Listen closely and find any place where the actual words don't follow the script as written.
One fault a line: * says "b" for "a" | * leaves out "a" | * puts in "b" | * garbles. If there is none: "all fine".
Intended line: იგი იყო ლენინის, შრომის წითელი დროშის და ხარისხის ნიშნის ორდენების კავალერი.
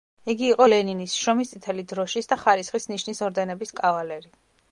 all fine